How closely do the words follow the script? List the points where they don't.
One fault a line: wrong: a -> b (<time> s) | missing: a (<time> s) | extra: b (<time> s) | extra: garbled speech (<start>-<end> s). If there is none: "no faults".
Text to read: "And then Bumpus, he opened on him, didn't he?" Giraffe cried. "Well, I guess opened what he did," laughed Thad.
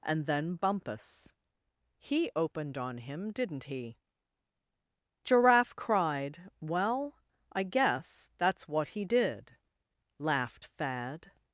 wrong: opened -> that's (8.4 s)